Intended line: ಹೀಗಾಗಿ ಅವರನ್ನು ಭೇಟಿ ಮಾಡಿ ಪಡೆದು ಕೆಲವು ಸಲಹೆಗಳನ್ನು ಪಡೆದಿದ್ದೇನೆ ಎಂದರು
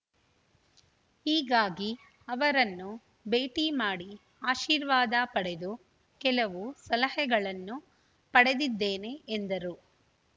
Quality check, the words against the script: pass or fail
fail